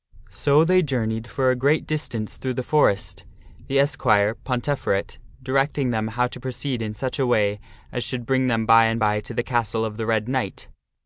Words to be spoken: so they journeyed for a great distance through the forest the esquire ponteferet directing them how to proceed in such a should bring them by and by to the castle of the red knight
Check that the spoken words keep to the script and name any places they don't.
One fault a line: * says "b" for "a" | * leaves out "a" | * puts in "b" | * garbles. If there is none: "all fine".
* puts in "way as"